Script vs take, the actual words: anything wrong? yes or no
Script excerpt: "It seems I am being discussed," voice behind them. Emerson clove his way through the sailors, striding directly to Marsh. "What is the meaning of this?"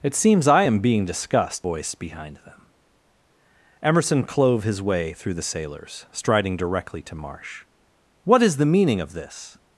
no